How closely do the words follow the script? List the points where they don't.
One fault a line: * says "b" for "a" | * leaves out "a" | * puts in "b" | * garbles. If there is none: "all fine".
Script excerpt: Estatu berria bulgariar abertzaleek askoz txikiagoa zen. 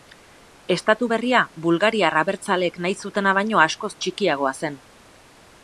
* puts in "nahi zutena baino"